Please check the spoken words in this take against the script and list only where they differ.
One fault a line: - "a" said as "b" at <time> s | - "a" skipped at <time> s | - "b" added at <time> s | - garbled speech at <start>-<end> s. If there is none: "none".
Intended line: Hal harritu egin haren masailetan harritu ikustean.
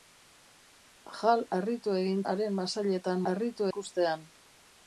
none